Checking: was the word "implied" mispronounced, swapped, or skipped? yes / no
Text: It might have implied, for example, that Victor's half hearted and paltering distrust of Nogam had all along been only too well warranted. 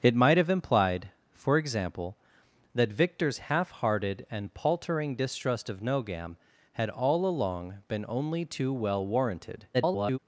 no